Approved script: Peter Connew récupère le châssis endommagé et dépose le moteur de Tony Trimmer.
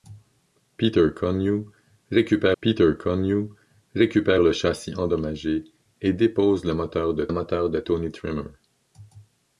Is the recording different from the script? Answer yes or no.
yes